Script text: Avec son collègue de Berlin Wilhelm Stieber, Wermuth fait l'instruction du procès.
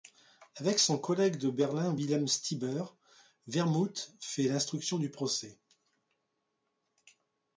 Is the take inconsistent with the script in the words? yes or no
no